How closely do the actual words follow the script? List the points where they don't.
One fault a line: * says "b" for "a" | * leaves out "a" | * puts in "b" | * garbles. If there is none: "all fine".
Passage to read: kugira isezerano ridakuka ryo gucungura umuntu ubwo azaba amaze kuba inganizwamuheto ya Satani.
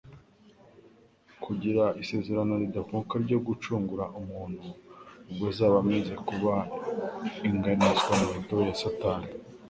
all fine